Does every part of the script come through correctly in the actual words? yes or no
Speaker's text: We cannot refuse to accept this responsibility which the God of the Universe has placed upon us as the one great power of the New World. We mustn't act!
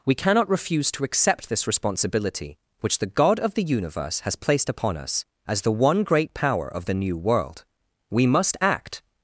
no